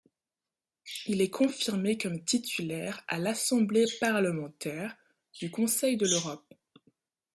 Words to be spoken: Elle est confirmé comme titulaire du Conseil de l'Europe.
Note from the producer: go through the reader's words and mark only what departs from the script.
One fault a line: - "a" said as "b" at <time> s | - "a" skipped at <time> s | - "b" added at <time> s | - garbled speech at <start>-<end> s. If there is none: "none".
- "Elle" said as "Il" at 1.1 s
- "à l'assemblée parlementaire" added at 3.1 s